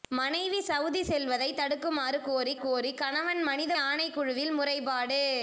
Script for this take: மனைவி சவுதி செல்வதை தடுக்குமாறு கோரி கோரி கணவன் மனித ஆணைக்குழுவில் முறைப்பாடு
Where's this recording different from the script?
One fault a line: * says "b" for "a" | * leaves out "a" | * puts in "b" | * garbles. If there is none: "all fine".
all fine